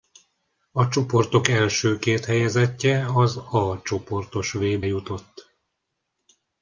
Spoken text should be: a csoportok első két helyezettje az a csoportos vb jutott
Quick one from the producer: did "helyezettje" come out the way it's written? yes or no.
yes